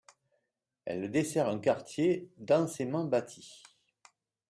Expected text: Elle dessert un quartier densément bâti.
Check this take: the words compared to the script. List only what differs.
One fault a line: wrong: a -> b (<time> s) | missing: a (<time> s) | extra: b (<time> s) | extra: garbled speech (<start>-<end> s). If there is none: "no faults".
no faults